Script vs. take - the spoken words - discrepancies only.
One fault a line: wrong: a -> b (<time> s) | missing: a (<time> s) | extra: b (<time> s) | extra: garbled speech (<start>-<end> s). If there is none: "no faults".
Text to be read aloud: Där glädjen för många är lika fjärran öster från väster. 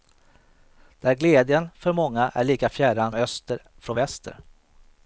no faults